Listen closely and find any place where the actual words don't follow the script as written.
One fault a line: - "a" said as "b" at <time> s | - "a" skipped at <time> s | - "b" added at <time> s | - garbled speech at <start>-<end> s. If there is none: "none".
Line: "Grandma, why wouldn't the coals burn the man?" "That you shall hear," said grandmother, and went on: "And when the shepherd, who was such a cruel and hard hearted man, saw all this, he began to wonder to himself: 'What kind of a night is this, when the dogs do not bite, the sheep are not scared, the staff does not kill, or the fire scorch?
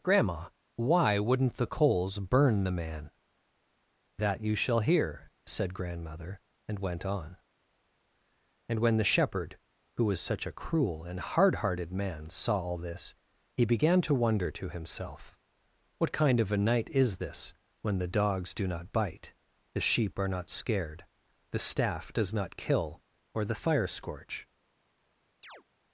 none